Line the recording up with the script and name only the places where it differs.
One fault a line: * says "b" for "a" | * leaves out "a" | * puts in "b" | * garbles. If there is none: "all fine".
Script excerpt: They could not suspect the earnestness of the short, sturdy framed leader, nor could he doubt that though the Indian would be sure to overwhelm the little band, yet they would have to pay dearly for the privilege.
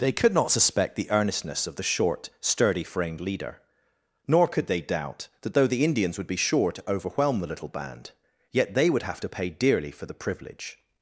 * says "they" for "he"
* says "Indians" for "Indian"